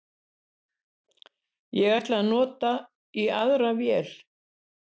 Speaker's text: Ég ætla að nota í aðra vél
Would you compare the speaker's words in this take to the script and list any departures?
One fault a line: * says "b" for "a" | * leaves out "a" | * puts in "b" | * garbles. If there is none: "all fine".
all fine